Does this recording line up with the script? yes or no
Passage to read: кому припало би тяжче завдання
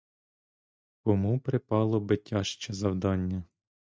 yes